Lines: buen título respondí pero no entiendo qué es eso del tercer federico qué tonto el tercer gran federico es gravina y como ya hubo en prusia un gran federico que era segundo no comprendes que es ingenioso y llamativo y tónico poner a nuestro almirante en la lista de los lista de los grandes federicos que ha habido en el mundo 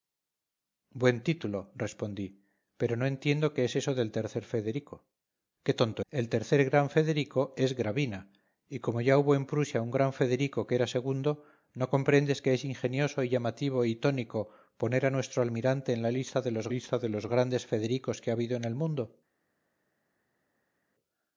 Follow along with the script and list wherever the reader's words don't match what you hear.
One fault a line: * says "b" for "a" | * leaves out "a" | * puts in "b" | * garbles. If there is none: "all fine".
all fine